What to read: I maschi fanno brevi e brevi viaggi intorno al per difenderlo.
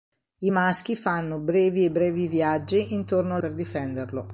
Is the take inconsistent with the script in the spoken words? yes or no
no